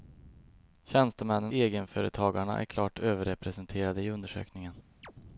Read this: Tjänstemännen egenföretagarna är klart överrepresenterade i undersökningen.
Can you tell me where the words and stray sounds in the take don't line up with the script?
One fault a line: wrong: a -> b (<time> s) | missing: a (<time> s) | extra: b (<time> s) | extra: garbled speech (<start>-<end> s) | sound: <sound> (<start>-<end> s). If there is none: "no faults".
sound: chirp (5.0-5.1 s)